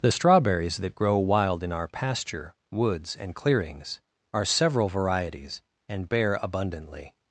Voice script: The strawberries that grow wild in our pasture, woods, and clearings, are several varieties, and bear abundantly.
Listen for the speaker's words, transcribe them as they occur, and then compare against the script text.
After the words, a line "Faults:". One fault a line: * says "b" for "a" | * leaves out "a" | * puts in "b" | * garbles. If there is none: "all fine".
The strawberries that grow wild in our pasture, woods, and clearings, are several varieties, and bear abundantly.
Faults:
all fine